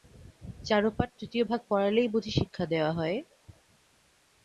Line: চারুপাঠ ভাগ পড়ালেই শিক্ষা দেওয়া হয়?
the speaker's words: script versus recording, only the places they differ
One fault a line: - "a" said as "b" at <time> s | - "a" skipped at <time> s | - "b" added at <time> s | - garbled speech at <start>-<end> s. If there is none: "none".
- "তৃতীয়" added at 1.2 s
- "বুঝি" added at 2.1 s